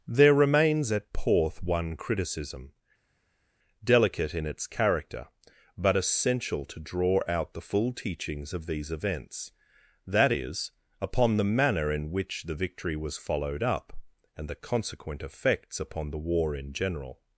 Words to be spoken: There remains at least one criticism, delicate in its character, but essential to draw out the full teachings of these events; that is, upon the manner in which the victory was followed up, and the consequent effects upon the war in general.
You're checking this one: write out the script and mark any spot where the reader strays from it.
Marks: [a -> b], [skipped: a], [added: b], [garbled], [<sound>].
There remains at [least -> porth] one criticism, delicate in its character, but essential to draw out the full teachings of these events; that is, upon the manner in which the victory was followed up, and the consequent effects upon the war in general.